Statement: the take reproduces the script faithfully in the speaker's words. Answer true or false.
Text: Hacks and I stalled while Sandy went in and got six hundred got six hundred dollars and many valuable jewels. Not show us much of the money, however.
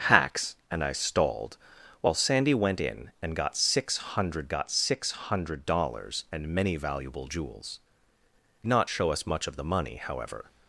true